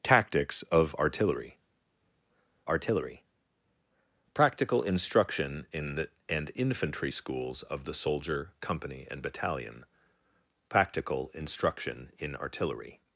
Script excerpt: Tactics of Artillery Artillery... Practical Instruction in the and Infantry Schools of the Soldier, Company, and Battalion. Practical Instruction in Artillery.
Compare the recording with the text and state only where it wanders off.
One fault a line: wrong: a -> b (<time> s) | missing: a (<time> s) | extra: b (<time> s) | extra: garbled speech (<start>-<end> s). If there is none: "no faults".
no faults